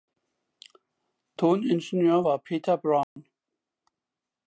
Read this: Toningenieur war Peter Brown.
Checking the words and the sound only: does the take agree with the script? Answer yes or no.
no